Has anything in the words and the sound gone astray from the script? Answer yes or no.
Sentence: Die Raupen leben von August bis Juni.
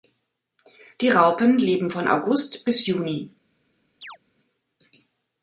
yes